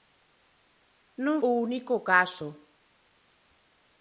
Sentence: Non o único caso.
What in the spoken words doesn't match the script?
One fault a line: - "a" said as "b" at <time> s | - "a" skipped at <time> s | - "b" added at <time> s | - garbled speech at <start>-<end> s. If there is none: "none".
none